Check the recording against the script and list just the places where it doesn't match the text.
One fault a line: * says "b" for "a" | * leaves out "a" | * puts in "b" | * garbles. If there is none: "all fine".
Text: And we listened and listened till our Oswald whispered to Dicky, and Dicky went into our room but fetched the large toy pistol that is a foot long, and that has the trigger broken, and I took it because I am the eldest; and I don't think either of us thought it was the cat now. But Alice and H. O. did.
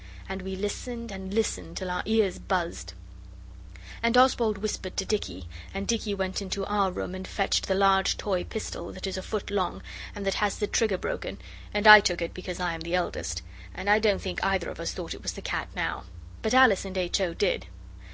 * puts in "ears buzzed And"
* says "and" for "but"